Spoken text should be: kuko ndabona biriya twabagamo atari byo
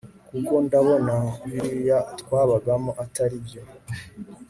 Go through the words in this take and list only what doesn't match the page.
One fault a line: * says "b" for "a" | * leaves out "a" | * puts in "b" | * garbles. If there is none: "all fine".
all fine